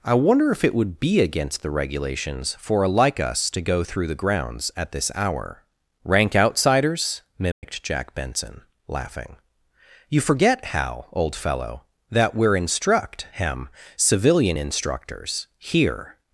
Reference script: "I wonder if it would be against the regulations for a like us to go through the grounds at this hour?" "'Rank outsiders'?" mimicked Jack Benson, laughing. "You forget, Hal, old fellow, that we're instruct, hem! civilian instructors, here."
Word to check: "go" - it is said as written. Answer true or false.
true